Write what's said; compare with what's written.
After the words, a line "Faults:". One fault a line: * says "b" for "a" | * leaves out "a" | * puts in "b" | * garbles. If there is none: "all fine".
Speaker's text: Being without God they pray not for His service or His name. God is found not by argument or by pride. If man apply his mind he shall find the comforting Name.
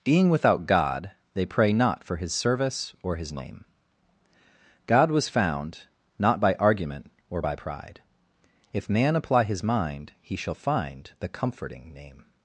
Being without God they pray not for His service or His name. God was found not by argument or by pride. If man apply his mind he shall find the comforting Name.
Faults:
* says "was" for "is"